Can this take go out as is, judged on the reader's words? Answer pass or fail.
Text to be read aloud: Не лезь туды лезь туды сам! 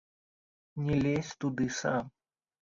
fail